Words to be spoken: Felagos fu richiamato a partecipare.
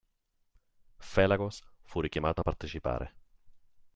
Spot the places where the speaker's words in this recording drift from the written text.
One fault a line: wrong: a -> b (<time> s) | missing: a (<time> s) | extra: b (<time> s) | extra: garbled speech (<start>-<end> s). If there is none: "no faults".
no faults